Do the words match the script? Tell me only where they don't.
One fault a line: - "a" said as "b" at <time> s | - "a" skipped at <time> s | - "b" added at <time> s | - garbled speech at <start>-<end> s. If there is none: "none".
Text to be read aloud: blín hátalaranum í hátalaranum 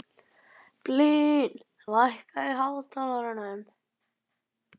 - "hátalaranum" said as "lækkaðu" at 1.9 s